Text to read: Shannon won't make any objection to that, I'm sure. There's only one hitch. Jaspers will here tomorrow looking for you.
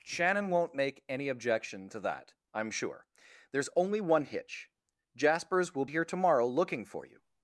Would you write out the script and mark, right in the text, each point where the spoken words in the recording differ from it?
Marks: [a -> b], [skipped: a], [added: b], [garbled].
Shannon won't make any objection to that, I'm sure. There's only one hitch. Jaspers will here tomorrow looking for you.